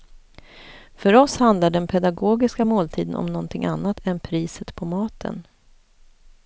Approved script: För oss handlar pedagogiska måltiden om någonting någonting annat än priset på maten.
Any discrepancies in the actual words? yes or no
yes